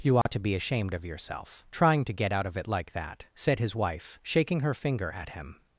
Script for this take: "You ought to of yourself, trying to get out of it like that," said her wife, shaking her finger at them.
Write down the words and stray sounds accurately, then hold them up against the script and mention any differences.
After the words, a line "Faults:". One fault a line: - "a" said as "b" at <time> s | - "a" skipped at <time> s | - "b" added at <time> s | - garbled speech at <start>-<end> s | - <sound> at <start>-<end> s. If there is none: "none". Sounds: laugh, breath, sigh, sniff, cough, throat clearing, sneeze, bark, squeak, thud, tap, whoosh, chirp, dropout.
"You ought to be ashamed of yourself, trying to get out of it like that," said his wife, shaking her finger at him.
Faults:
- dropout at 0.2-0.3 s
- "be ashamed" added at 0.4 s
- "her" said as "his" at 3.6 s
- "them" said as "him" at 5.3 s